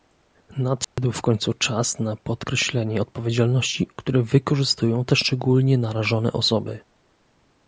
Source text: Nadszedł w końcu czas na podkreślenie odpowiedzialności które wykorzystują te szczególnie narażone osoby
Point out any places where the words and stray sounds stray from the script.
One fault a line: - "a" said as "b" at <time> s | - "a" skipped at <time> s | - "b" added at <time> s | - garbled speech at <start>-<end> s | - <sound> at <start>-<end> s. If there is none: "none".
- dropout at 0.8-1.0 s